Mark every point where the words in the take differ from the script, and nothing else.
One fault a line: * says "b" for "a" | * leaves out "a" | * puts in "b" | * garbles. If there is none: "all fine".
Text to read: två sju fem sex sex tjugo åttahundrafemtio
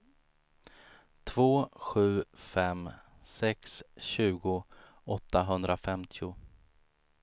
* leaves out "sex"